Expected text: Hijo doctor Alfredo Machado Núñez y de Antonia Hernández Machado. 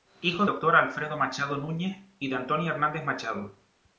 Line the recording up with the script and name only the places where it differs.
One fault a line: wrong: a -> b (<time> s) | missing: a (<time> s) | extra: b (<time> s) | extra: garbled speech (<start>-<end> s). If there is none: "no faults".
no faults